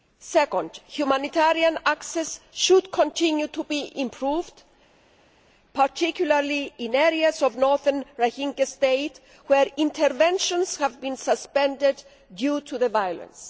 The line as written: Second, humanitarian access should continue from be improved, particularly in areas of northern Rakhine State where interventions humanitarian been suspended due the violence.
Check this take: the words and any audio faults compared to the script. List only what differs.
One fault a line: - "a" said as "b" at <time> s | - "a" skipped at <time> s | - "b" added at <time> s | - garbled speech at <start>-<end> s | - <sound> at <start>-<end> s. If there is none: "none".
- "from" said as "to" at 3.5 s
- "humanitarian" said as "have" at 10.8 s
- "to" added at 12.6 s